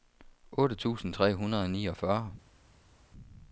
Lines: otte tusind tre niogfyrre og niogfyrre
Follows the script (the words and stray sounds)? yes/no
no